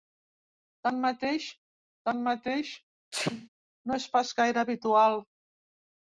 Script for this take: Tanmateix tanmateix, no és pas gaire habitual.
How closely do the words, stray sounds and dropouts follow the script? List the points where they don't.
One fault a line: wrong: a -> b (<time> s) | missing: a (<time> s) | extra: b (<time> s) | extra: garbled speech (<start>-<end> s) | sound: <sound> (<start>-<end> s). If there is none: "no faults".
sound: sneeze (3.1-3.5 s)